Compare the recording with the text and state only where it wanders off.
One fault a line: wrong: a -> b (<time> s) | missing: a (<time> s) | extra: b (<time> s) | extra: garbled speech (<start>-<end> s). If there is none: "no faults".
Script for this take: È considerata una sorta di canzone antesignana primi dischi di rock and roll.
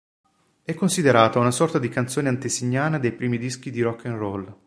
extra: dei (3.0 s)